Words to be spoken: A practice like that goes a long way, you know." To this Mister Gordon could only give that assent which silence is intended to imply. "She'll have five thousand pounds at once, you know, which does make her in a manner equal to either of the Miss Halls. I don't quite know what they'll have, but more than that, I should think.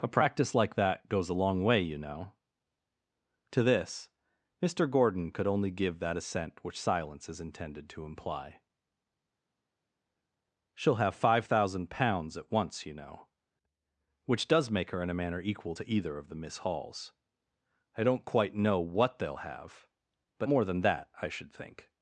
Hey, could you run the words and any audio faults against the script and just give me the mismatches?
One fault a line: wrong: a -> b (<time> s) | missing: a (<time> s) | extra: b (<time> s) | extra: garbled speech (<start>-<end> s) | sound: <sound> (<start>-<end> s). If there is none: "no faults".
no faults